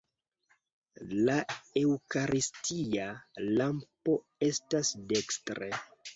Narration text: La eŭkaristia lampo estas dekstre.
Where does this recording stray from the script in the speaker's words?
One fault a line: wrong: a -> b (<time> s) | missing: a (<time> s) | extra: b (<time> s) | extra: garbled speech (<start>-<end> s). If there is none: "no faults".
no faults